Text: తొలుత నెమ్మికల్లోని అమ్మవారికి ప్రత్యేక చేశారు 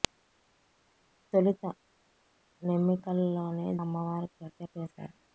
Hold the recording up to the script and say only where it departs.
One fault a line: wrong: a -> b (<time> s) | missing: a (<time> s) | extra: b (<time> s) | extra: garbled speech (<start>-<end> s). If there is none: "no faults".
no faults